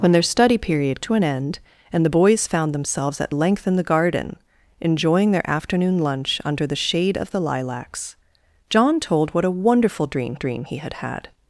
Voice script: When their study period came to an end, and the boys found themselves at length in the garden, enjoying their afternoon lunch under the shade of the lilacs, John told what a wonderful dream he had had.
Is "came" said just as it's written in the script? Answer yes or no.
no